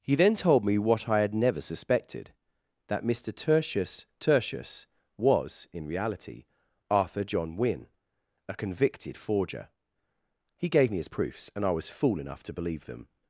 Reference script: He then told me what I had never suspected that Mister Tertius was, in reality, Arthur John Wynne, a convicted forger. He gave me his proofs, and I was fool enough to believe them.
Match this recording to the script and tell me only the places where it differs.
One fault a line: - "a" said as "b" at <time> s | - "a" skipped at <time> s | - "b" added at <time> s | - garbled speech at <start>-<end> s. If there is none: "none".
- "Tertius" added at 4.2 s